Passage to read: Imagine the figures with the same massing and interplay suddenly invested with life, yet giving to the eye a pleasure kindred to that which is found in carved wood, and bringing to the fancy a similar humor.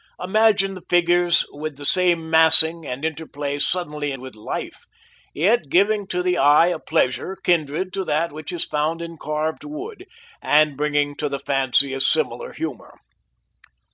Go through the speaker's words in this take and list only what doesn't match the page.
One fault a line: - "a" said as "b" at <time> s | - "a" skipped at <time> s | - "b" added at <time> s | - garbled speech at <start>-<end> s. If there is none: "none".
- "invested" skipped at 4.1 s